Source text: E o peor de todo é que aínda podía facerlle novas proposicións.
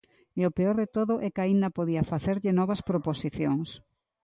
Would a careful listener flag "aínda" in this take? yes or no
no